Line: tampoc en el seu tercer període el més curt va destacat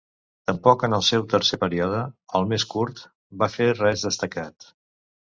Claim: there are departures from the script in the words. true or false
true